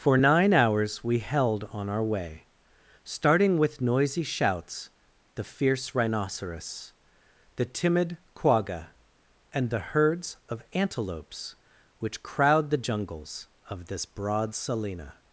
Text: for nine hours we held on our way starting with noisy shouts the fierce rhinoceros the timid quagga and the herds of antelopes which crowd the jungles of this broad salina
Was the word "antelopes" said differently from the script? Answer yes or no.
no